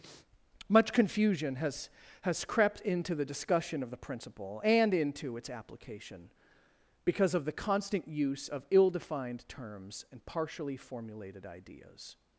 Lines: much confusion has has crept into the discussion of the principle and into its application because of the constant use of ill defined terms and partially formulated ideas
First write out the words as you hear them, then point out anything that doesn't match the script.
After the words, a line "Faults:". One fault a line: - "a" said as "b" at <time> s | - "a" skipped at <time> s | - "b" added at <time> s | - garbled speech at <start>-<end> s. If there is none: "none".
much confusion has has crept into the discussion of the principle and into its application because of the constant use of ill defined terms and partially formulated ideas
Faults:
none